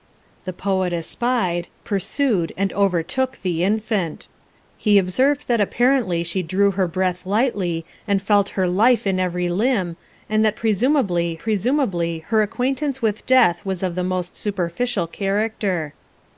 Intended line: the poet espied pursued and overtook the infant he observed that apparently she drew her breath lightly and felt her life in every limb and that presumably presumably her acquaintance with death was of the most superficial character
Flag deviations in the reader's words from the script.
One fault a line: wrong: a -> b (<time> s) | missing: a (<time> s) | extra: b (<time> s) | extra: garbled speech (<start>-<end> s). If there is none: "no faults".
no faults